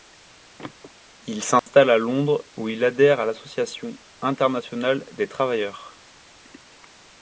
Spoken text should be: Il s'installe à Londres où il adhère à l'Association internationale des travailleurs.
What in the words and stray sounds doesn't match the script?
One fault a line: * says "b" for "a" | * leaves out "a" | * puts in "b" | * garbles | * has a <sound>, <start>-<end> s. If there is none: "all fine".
* has a dropout, 1.6-1.7 s